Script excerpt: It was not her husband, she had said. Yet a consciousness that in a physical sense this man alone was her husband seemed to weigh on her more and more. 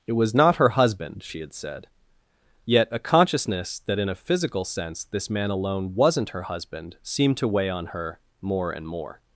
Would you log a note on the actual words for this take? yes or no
yes